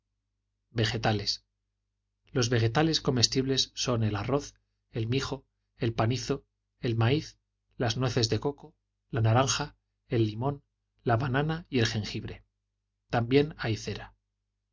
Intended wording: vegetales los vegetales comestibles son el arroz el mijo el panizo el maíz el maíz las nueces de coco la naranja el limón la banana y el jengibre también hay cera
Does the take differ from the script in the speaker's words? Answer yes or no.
yes